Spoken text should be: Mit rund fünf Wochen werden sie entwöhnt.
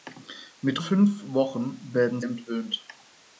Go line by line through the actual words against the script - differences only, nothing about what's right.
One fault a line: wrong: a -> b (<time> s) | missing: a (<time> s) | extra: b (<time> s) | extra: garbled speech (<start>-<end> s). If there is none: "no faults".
missing: rund (0.8 s)
missing: sie (2.2 s)